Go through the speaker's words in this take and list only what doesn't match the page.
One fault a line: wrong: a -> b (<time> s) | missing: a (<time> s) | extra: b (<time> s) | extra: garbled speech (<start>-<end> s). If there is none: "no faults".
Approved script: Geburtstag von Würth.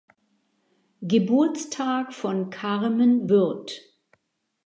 extra: Carmen (2.5 s)